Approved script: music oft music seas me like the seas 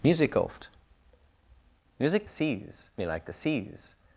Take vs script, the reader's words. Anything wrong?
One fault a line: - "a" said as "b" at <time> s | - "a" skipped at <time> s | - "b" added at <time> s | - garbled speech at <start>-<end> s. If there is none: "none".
none